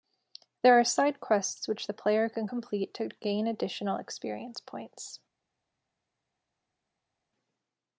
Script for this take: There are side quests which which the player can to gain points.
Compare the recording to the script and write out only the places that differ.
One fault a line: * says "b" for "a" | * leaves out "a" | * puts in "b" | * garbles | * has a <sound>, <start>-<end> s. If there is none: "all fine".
* leaves out "which"
* puts in "complete"
* puts in "additional experience"